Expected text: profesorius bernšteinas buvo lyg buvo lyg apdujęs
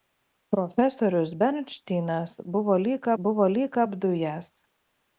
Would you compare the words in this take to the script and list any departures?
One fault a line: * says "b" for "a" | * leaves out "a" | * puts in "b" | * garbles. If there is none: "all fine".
all fine